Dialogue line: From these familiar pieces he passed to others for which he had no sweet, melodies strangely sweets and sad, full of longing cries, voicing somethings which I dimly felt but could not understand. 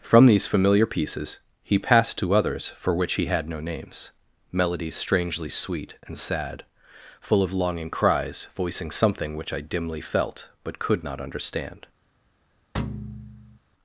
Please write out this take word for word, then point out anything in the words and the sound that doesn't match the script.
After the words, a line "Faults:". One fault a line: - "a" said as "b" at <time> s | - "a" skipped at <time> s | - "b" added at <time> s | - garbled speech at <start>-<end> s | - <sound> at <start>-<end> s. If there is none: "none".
From these familiar pieces he passed to others for which he had no names, melodies strangely sweet and sad, full of longing cries, voicing something which I dimly felt but could not understand.
Faults:
- "sweet" said as "names" at 3.6 s
- "sweets" said as "sweet" at 5.5 s
- "somethings" said as "something" at 8.9 s
- thud at 12.7-13.6 s